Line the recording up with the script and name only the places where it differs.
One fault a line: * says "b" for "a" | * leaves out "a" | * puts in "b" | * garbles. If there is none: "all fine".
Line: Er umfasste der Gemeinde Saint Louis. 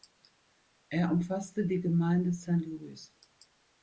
* says "die" for "der"